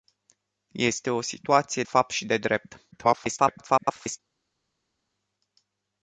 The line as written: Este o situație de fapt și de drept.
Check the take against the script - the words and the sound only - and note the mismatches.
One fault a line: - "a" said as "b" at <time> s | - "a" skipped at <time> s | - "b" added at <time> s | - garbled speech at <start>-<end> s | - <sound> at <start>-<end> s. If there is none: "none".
- "de" skipped at 1.8 s
- garbled speech at 2.9-4.2 s